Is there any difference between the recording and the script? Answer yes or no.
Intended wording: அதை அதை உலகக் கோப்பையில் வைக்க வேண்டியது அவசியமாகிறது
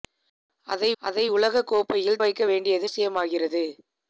no